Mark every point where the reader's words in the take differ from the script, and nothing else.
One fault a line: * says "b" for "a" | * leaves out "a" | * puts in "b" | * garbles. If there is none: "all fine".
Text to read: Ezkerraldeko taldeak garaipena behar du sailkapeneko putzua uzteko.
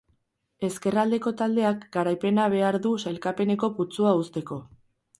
all fine